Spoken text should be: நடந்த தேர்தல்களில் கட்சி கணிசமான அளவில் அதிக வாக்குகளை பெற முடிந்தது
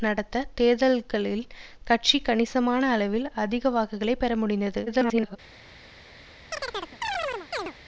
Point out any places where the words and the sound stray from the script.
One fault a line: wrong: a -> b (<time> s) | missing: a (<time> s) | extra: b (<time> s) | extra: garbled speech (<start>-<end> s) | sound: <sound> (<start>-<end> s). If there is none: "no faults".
extra: garbled speech (4.9-5.4 s)
sound: chirp (6.5-7.7 s)